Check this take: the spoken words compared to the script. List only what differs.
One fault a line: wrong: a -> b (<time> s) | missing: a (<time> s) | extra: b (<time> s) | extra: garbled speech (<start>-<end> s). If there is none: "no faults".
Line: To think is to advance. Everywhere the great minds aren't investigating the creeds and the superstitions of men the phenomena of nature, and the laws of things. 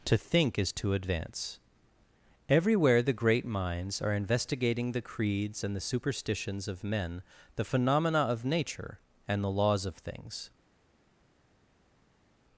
wrong: aren't -> are (4.0 s)